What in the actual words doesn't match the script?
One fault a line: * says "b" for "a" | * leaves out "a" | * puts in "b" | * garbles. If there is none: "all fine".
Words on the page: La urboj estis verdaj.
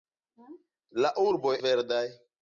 * leaves out "estis"